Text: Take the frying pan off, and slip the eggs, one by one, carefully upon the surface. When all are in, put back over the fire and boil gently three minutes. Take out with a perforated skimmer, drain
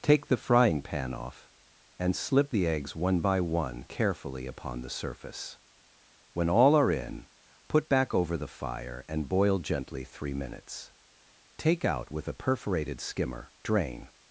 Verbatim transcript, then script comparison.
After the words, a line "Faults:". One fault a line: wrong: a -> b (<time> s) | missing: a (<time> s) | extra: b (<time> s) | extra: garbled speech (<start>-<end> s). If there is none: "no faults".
Take the frying pan off, and slip the eggs, one by one, carefully upon the surface. When all are in, put back over the fire and boil gently three minutes. Take out with a perforated skimmer, drain
Faults:
no faults